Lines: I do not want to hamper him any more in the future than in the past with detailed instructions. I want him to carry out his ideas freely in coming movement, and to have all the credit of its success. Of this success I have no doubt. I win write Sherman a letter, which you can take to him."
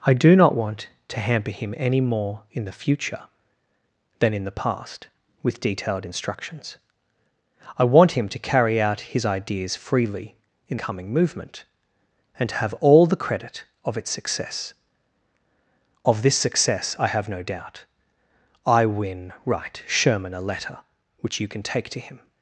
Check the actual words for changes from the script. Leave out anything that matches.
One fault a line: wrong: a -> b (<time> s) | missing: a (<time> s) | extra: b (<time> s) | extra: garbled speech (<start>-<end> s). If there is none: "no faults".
no faults